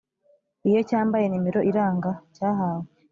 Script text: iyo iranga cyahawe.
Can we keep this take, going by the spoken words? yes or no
no